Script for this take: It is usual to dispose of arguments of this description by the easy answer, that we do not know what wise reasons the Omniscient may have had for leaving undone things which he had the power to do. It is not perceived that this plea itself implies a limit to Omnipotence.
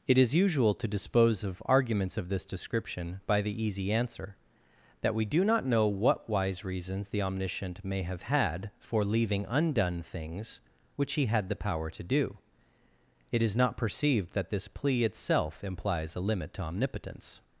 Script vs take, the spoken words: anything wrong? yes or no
no